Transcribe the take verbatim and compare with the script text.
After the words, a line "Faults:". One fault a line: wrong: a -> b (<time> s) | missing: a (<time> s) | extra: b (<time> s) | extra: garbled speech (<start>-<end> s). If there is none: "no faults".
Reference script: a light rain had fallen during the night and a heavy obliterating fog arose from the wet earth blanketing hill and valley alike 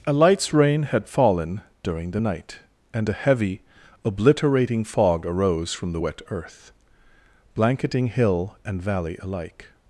a lights rain had fallen during the night and a heavy obliterating fog arose from the wet earth blanketing hill and valley alike
Faults:
wrong: light -> lights (0.1 s)